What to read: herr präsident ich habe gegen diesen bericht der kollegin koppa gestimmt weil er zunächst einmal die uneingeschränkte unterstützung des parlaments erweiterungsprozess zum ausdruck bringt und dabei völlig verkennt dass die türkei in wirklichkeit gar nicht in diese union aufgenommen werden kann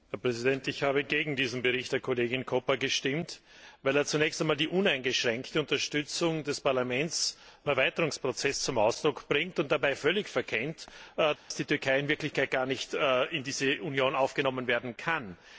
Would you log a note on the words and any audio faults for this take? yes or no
yes